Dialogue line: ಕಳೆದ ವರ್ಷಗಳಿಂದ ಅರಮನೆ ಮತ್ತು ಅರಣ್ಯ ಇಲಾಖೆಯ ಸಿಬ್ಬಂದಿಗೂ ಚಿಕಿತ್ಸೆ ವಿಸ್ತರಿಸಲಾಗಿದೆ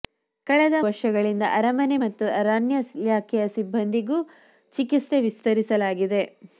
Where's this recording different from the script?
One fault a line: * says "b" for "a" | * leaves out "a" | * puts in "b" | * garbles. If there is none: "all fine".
all fine